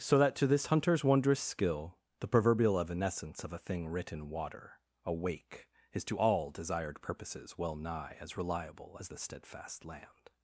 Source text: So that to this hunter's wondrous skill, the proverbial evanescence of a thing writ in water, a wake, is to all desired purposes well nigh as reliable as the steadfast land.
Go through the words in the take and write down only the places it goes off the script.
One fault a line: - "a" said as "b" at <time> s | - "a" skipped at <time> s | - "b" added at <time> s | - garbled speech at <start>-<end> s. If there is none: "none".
none